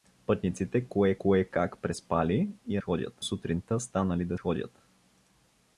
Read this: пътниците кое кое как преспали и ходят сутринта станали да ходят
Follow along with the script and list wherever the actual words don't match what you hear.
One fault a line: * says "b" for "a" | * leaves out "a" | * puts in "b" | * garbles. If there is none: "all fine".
all fine